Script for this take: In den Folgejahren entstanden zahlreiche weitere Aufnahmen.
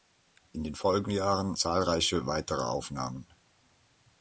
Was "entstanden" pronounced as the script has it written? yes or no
no